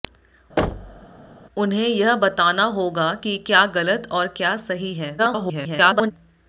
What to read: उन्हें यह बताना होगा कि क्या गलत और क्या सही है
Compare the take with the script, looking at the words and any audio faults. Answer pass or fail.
fail